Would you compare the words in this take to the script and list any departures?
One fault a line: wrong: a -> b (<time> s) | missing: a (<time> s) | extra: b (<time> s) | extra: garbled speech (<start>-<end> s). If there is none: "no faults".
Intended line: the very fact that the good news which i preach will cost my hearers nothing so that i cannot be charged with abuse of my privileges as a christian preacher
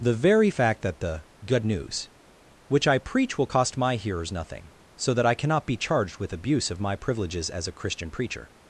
no faults